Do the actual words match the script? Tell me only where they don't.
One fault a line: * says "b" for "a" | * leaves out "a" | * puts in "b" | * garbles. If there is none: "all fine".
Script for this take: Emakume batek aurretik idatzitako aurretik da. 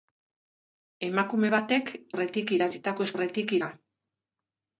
all fine